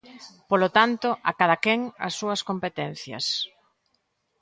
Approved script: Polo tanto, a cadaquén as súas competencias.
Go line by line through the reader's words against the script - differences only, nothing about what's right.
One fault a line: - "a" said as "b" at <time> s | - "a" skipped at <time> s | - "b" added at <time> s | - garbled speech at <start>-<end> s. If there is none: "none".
none